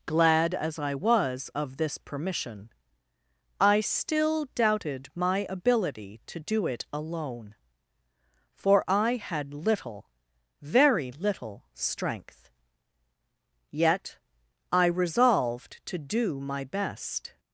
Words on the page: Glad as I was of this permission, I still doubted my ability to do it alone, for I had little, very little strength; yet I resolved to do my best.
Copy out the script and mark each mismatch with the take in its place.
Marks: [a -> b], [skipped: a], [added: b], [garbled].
Glad as I was of this permission, I still doubted my ability to do it alone, for I had little, very little strength; yet I resolved to do my best.